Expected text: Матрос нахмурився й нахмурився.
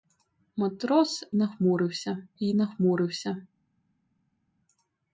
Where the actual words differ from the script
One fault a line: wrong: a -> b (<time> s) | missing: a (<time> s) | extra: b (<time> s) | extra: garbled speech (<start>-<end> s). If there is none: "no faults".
no faults